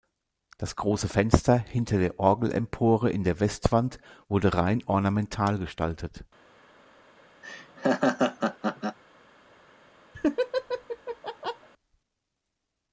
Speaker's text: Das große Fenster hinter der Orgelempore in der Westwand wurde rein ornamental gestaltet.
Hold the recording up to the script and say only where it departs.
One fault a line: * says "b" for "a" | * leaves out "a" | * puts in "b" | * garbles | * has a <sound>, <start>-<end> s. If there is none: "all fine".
* has a laugh, 7.4-9.0 s
* has a laugh, 10.1-11.7 s